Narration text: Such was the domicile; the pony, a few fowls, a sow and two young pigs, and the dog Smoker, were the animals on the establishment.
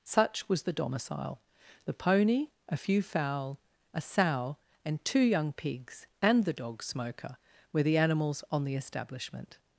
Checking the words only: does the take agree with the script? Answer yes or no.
no